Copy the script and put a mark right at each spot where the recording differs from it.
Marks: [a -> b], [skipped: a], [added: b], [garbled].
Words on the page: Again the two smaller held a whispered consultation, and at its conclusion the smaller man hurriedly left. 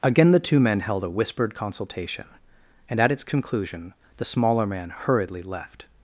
Again the two [smaller -> men] held a whispered consultation, and at its conclusion the smaller man hurriedly left.